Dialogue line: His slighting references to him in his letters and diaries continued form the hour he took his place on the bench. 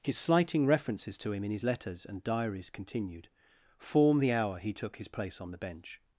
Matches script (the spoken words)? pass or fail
pass